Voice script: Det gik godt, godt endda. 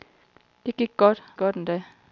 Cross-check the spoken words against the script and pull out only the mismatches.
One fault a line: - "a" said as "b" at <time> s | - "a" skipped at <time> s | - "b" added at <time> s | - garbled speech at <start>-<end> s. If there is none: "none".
none